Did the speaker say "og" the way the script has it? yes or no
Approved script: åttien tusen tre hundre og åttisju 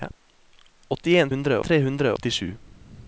no